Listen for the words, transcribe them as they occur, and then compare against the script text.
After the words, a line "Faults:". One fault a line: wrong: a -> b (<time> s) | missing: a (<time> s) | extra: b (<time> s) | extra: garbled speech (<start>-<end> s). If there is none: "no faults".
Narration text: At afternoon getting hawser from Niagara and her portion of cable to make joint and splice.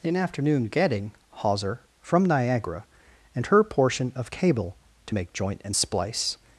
In afternoon getting hawser from Niagara and her portion of cable to make joint and splice.
Faults:
wrong: At -> In (0.0 s)